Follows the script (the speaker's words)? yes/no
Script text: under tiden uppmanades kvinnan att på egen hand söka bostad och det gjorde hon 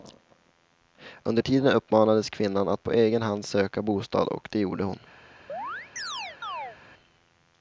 yes